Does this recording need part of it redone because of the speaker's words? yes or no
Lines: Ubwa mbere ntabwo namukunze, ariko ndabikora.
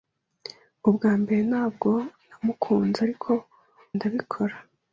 no